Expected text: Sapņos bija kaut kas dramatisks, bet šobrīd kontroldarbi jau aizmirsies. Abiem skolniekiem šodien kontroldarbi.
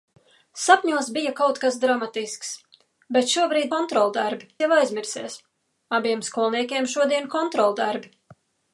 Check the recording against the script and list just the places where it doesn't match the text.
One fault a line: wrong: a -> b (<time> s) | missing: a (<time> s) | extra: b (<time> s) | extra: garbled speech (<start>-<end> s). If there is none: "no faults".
no faults